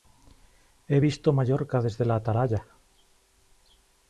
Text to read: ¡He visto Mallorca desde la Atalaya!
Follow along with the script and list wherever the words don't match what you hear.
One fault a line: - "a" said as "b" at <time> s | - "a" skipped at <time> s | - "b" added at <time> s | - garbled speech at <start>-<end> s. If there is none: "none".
none